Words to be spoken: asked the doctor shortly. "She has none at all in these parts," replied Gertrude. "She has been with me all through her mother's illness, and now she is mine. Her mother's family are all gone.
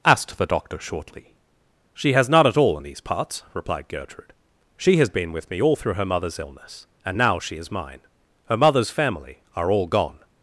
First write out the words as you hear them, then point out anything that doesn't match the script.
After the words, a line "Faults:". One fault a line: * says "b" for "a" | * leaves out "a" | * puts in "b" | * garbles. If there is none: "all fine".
asked the doctor shortly. "She has none at all in these parts," replied Gertrude. "She has been with me all through her mother's illness, and now she is mine. Her mother's family are all gone.
Faults:
all fine